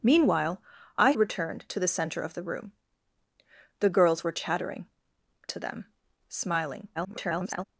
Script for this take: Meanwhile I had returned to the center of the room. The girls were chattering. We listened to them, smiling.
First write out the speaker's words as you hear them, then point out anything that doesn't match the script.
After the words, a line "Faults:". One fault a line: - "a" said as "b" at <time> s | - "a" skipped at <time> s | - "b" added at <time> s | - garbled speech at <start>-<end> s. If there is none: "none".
Meanwhile I returned to the center of the room. The girls were chattering. To them, smiling. [garbled]
Faults:
- "had" skipped at 1.1 s
- "We listened" skipped at 4.9 s
- garbled speech at 6.9-7.6 s